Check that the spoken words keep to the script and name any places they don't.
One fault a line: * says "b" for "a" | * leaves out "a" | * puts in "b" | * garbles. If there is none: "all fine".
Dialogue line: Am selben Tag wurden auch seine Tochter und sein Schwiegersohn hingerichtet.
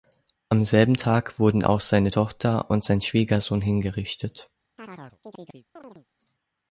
all fine